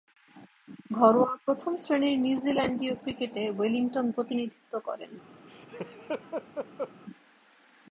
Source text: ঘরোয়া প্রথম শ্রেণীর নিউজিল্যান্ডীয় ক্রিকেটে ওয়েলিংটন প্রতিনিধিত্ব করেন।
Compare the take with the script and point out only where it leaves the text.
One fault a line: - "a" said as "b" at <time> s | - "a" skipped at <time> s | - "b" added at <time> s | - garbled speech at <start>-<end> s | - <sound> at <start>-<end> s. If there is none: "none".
- laugh at 5.5-6.9 s